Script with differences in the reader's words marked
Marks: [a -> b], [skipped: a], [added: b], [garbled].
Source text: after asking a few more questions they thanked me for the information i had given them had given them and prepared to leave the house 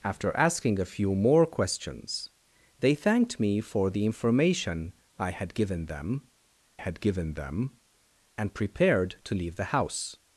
after asking a few more questions they thanked me for the information i had given them had given them and prepared to leave the house